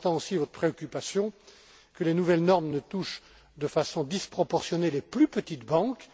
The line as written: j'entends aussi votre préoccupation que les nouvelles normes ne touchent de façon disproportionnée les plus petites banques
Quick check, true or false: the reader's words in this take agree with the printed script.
true